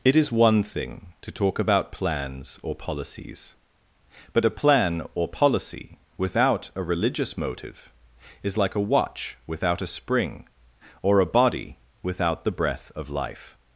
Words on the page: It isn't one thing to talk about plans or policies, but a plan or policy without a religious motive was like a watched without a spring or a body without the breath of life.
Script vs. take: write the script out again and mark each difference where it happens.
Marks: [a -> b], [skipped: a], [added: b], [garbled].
It [isn't -> is] one thing to talk about plans or policies, but a plan or policy without a religious motive [was -> is] like a [watched -> watch] without a spring or a body without the breath of life.